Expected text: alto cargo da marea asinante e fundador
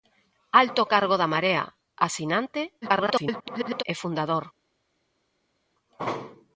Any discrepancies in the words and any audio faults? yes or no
yes